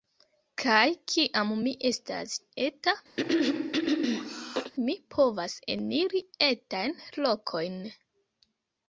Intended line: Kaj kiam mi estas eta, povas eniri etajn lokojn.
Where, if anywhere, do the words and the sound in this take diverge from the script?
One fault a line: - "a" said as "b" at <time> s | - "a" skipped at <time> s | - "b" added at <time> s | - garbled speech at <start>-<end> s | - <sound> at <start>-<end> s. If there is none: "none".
- throat clearing at 3.2-4.7 s
- "mi" added at 4.9 s